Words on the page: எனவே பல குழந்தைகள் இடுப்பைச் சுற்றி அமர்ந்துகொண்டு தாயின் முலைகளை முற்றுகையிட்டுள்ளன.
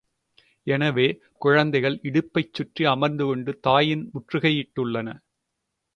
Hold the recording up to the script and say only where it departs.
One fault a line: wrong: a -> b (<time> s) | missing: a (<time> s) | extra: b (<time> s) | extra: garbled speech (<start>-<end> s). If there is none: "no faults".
missing: பல (1.1 s)
missing: முலைகளை (4.0 s)